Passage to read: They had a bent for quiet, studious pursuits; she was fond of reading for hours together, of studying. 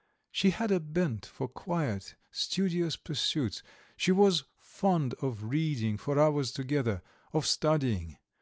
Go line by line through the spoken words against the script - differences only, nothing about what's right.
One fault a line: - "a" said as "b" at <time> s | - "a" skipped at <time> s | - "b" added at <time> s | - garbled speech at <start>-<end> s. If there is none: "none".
- "They" said as "She" at 0.3 s